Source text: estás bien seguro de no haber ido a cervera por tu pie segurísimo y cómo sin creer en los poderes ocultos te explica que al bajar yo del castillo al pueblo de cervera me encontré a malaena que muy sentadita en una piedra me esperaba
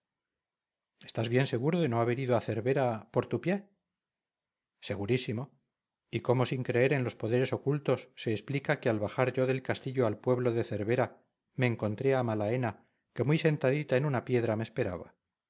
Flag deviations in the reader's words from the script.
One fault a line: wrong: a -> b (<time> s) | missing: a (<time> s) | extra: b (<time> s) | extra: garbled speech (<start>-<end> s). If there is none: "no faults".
wrong: te -> se (8.2 s)